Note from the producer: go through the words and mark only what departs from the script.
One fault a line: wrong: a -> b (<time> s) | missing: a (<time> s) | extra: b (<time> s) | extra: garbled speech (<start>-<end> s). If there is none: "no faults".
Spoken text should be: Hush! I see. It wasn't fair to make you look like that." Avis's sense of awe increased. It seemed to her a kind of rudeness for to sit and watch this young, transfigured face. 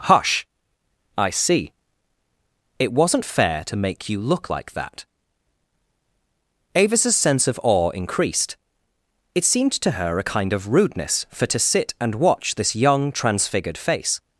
no faults